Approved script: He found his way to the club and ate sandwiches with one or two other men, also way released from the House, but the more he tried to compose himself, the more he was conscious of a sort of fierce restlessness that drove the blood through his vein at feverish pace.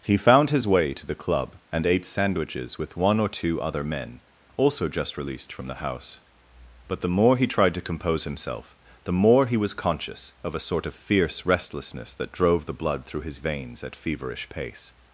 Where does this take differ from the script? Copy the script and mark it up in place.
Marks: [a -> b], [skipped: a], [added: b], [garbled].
He found his way to the club and ate sandwiches with one or two other men, also [way -> just] released from the House, but the more he tried to compose himself, the more he was conscious of a sort of fierce restlessness that drove the blood through his [vein -> veins] at feverish pace.